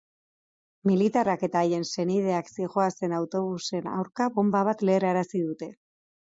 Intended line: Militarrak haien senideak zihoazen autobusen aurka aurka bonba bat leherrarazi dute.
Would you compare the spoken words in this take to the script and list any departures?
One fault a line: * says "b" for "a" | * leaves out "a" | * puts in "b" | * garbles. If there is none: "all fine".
* puts in "eta"
* leaves out "aurka"